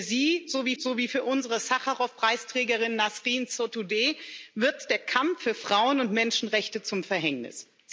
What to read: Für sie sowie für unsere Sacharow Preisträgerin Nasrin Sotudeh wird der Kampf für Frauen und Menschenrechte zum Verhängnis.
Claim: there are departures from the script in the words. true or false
true